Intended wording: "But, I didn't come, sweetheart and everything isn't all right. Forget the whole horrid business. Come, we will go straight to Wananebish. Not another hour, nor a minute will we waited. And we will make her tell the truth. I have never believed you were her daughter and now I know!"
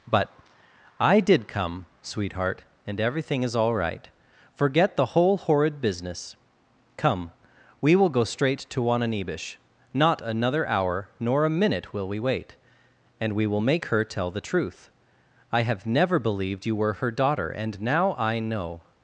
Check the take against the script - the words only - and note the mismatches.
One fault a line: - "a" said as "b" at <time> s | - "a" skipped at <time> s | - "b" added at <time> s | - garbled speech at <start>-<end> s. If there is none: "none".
- "didn't" said as "did" at 1.2 s
- "isn't" said as "is" at 3.4 s
- "waited" said as "wait" at 12.2 s